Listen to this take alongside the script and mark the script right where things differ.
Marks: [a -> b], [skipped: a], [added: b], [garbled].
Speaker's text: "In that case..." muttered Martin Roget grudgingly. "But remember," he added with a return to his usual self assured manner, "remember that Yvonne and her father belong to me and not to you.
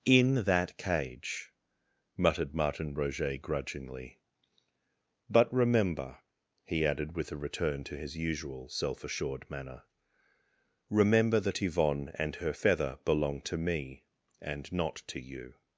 "In that [case..." -> cage] muttered Martin Roget grudgingly. "But remember," he added with a return to his usual self assured manner, "remember that Yvonne and her [father -> feather] belong to me and not to you.